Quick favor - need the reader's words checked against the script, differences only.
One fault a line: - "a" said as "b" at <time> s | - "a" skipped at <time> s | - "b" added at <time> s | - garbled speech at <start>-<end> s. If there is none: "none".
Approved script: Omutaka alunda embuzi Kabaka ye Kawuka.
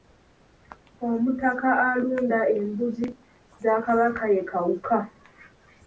- "za" added at 3.6 s